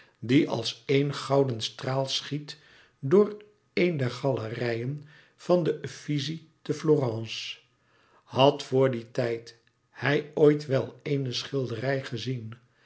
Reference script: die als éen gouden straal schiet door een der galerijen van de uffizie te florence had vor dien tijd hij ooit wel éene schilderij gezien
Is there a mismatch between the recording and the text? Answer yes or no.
no